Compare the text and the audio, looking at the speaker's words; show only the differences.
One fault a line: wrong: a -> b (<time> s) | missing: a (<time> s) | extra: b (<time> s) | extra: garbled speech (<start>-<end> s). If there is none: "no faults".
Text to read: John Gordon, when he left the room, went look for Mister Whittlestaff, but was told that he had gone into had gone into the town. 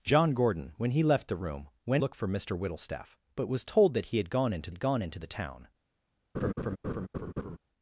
no faults